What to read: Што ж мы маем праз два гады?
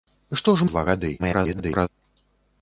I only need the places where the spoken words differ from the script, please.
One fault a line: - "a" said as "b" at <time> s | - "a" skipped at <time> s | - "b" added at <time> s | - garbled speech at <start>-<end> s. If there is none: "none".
- "мы маем праз" skipped at 0.7 s
- garbled speech at 1.2-1.9 s